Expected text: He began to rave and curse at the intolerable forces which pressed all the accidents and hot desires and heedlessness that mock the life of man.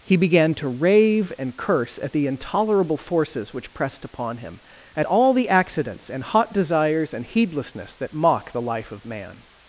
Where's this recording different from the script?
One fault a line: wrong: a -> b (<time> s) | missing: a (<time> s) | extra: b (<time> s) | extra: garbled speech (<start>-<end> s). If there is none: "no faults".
extra: upon him at (4.0 s)